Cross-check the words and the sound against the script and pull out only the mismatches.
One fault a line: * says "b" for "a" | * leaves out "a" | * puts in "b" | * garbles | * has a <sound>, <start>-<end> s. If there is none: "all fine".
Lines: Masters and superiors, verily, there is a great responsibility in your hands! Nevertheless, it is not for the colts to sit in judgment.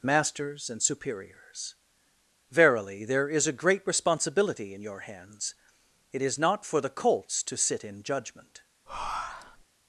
* leaves out "Nevertheless"
* has a breath, 8.9-9.6 s